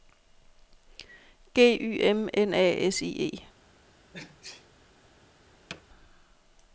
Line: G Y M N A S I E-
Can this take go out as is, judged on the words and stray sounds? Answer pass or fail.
fail